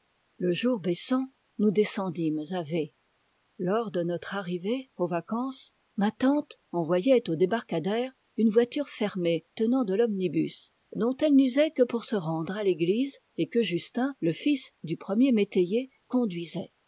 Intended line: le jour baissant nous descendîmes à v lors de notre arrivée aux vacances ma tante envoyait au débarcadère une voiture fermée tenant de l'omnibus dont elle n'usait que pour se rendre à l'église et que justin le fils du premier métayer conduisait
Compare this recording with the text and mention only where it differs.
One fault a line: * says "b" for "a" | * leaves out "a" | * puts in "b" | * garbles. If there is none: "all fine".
all fine